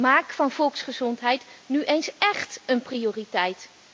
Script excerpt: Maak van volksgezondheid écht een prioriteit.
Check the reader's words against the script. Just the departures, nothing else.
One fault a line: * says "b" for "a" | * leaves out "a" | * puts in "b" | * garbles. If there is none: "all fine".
* puts in "nu eens"